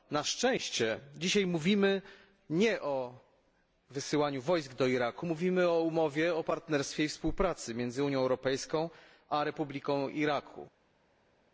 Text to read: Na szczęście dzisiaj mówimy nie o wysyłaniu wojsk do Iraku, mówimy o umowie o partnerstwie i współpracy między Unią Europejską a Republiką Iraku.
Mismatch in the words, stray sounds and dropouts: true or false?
false